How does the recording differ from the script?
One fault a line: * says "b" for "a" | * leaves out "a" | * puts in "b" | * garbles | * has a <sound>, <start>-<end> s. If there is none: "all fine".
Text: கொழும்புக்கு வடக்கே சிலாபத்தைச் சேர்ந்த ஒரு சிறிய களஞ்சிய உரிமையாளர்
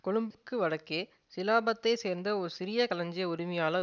* has a dropout, 0.3-0.3 s